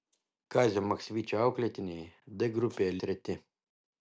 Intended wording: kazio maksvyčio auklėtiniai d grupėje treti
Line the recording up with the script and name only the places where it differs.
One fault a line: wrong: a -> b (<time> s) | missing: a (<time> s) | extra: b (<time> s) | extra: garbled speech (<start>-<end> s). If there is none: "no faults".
no faults